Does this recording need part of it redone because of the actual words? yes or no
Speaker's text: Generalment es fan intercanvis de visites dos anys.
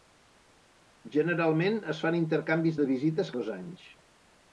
no